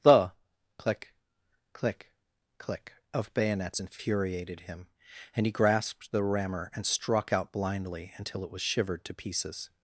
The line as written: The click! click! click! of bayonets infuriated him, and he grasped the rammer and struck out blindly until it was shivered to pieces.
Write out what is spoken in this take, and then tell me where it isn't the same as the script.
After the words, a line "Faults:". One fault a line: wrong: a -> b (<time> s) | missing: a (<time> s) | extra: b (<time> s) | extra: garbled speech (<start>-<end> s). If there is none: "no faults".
The click! click! click! of bayonets infuriated him, and he grasped the rammer and struck out blindly until it was shivered to pieces.
Faults:
no faults